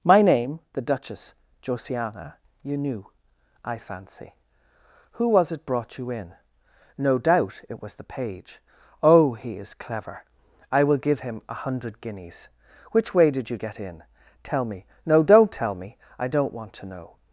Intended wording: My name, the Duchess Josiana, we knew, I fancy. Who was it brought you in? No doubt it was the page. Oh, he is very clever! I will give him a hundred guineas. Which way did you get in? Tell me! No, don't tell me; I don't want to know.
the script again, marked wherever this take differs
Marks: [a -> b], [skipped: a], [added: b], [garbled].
My name, the Duchess Josiana, [we -> you] knew, I fancy. Who was it brought you in? No doubt it was the page. Oh, he is [skipped: very] clever! I will give him a hundred guineas. Which way did you get in? Tell me! No, don't tell me; I don't want to know.